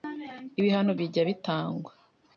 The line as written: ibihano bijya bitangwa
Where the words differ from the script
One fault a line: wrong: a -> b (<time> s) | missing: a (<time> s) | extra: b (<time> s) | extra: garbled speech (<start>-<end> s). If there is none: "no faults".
no faults